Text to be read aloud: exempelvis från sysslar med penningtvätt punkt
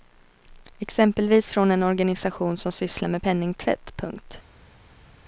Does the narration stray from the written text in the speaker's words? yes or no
yes